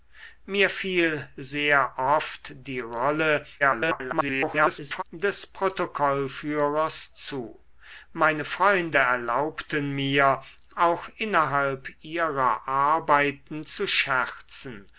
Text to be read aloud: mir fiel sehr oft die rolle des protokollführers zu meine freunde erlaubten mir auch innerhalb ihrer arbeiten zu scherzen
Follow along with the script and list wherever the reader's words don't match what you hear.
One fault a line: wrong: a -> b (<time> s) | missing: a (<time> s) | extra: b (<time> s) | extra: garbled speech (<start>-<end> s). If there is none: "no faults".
extra: garbled speech (3.6-5.0 s)